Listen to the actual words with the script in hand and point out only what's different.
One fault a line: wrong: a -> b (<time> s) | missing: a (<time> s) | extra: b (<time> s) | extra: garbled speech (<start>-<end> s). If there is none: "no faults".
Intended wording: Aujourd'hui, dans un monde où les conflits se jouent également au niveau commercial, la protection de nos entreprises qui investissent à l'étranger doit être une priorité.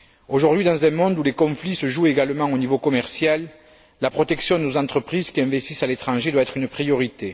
no faults